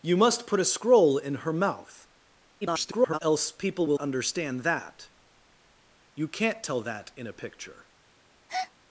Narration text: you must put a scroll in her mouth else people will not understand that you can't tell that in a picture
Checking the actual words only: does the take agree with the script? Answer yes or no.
no